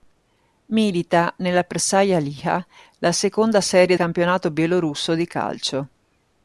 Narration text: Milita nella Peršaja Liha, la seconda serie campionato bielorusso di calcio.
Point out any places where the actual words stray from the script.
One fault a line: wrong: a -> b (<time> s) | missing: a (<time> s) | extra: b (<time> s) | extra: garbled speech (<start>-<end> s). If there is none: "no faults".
no faults